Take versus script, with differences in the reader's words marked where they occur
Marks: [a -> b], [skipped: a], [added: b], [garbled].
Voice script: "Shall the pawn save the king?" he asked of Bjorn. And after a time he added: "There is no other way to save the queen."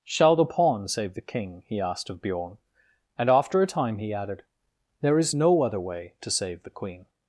"Shall the pawn save the king?" he asked of Bjorn. And after a time he added: "There is no other way to save the queen."